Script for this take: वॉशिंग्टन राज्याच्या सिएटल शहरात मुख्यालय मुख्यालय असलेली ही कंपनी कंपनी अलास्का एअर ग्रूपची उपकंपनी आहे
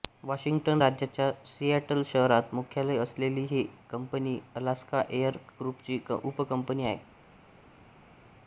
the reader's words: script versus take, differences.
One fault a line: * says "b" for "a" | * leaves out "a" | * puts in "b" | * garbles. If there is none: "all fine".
* leaves out "मुख्यालय"
* leaves out "कंपनी"